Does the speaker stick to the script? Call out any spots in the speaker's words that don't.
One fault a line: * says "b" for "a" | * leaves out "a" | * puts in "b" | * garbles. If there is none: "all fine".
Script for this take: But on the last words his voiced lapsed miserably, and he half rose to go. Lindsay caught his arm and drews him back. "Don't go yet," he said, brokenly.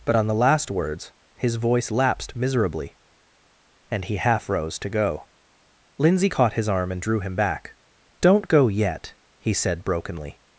* says "voice" for "voiced"
* says "drew" for "drews"